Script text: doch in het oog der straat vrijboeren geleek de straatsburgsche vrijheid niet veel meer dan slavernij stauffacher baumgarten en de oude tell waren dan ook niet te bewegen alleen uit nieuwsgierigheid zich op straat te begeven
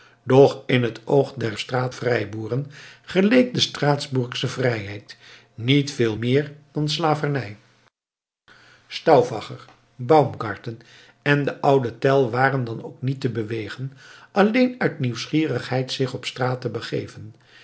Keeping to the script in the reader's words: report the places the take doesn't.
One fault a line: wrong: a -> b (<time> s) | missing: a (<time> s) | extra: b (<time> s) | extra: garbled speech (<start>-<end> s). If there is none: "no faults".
no faults